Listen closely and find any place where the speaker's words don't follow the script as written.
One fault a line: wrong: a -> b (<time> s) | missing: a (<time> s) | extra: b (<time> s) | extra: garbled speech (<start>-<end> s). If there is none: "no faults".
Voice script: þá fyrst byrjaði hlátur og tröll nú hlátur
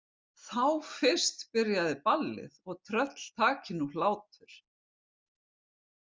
wrong: hlátur -> ballið (2.1 s)
extra: taki (3.4 s)